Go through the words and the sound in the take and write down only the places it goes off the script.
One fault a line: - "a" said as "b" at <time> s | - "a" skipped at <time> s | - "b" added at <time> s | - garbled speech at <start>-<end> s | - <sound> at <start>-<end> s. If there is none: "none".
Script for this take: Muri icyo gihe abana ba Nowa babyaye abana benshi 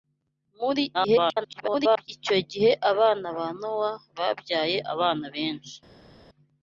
- garbled speech at 0.9-2.1 s